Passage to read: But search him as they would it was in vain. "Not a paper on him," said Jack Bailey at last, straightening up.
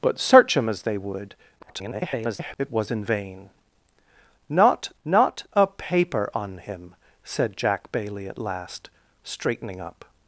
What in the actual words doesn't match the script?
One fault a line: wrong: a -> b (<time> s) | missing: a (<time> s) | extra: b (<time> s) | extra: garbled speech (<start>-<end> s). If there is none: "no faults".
extra: garbled speech (1.6-2.6 s)
extra: not (5.0 s)